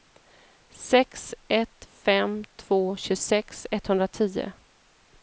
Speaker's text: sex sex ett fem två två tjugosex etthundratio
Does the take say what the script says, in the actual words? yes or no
no